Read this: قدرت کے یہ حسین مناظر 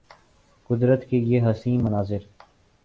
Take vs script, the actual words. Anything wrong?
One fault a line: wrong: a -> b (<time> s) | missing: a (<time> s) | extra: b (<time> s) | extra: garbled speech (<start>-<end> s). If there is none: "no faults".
no faults